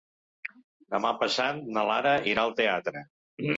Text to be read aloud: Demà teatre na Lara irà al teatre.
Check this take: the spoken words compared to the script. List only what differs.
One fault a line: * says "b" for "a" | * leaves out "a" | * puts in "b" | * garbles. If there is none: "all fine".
* says "passat" for "teatre"